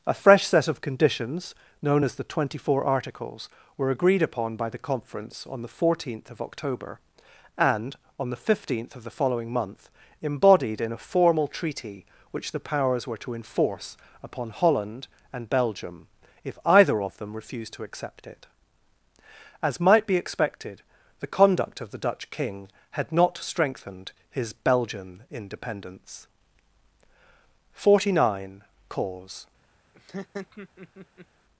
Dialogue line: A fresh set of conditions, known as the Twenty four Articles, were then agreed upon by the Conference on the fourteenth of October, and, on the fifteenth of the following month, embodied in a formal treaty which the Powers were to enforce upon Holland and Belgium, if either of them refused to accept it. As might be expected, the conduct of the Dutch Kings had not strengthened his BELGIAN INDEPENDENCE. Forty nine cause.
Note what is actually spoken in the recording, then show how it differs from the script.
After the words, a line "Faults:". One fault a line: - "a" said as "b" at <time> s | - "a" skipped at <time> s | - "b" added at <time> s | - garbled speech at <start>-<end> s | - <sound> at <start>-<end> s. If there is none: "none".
A fresh set of conditions, known as the Twenty four Articles, were agreed upon by the Conference on the fourteenth of October, and, on the fifteenth of the following month, embodied in a formal treaty which the Powers were to enforce upon Holland and Belgium, if either of them refused to accept it. As might be expected, the conduct of the Dutch King had not strengthened his BELGIAN INDEPENDENCE. Forty nine cause.
Faults:
- "then" skipped at 3.9 s
- "Kings" said as "King" at 22.3 s
- laugh at 29.9-31.3 s